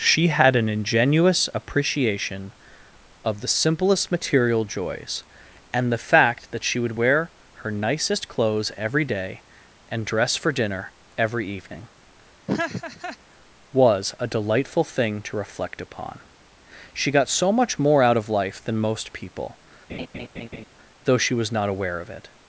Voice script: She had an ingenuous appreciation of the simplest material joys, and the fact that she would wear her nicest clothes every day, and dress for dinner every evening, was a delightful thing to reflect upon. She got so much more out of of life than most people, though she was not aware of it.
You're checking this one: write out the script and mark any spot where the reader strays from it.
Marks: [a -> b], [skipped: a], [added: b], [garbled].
She had an ingenuous appreciation of the simplest material joys, and the fact that she would wear her nicest clothes every day, and dress for dinner every evening, was a delightful thing to reflect upon. She got so much more out of [skipped: of] life than most people, though she was not aware of it.